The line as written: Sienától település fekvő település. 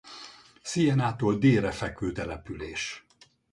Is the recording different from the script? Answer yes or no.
yes